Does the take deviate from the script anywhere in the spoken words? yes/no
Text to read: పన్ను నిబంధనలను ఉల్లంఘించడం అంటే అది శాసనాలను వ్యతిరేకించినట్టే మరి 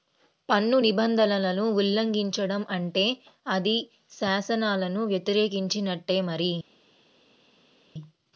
no